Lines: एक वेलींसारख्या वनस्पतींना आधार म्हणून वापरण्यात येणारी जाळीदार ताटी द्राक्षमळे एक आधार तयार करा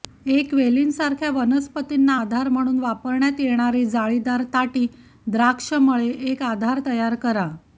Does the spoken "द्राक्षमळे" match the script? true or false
true